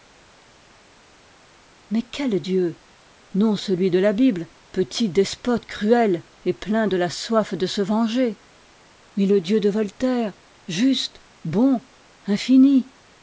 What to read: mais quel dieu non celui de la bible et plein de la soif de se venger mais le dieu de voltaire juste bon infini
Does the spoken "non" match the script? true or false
true